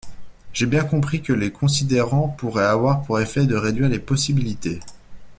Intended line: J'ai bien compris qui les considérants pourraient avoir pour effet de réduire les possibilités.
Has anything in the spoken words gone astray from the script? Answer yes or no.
yes